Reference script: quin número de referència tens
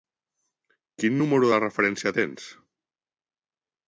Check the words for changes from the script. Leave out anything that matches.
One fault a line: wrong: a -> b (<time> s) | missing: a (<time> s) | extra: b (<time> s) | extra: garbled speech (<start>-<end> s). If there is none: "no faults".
no faults